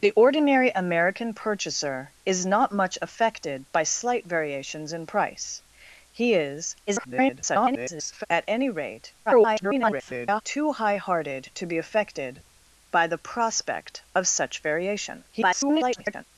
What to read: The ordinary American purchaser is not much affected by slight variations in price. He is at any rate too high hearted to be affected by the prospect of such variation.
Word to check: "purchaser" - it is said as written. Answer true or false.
true